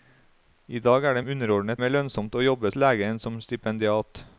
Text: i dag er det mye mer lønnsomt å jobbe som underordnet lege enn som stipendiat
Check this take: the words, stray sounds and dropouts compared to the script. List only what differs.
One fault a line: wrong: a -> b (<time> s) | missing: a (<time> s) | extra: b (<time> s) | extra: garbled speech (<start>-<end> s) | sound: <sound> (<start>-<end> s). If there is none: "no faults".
wrong: mye -> underordnet (1.3 s)
missing: som underordnet (2.7 s)